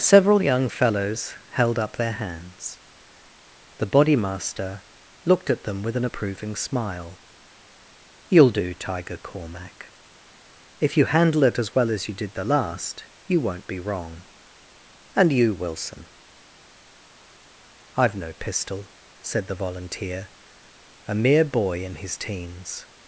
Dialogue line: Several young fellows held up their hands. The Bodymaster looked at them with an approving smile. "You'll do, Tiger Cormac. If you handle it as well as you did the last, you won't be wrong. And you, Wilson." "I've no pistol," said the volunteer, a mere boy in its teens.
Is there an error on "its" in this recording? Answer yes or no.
yes